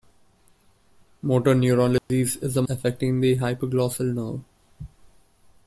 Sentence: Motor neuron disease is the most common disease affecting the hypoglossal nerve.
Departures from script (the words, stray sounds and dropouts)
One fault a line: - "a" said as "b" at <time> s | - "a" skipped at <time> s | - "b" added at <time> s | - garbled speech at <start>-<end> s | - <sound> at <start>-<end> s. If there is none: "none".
- dropout at 2.0-2.1 s
- "most common disease" skipped at 2.6 s